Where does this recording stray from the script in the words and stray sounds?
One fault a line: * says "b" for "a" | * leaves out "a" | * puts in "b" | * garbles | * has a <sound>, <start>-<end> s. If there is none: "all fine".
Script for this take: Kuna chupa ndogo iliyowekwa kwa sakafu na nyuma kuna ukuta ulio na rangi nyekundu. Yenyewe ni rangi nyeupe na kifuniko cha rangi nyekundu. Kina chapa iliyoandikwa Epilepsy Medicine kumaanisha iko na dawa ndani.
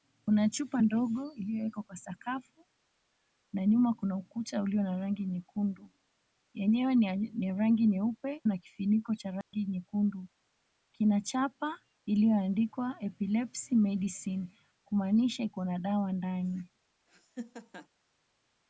* has a dropout, 9.4-9.5 s
* has a laugh, 17.1-17.9 s